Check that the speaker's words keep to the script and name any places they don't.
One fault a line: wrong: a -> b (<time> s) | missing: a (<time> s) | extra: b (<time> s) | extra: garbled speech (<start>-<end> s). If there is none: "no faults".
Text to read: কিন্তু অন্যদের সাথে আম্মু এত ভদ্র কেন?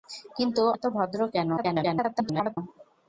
missing: অন্যদের সাথে আম্মু (0.6 s)
extra: garbled speech (1.6-2.6 s)